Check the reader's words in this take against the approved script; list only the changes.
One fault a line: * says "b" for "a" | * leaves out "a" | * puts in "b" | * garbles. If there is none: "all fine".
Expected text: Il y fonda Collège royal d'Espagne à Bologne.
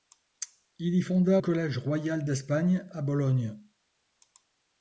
all fine